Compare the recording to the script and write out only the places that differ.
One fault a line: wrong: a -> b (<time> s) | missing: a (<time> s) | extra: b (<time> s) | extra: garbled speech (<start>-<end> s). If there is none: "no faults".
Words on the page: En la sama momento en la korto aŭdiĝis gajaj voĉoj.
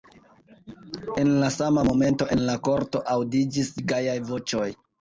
no faults